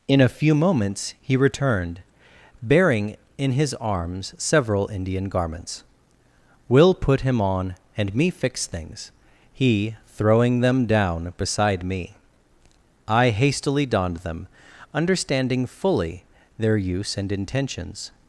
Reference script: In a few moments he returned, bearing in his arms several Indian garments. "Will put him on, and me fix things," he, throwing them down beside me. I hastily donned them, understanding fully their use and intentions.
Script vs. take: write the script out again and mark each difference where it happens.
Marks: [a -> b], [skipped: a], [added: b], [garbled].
In a few moments he returned, bearing in his arms several Indian garments. "Will put him on, and me fix things," he, throwing them down beside me. I hastily donned them, understanding fully their use and intentions.